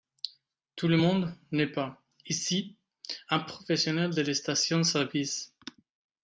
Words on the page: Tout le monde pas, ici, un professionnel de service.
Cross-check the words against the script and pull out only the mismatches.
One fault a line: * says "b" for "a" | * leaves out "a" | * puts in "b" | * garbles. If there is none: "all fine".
* puts in "n'est"
* puts in "la station"